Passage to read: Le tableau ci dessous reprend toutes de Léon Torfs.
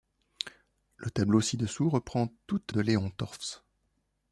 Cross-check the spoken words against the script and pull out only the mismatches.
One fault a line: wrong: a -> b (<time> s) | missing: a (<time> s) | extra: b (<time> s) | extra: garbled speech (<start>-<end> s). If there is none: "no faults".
no faults